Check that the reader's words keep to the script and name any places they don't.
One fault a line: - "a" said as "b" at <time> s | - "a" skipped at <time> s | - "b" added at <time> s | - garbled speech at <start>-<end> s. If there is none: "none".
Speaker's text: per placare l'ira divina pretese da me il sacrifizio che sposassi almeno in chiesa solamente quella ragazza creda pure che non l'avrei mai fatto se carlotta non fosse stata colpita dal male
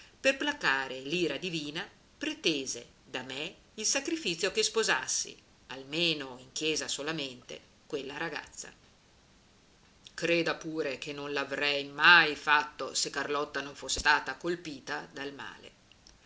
none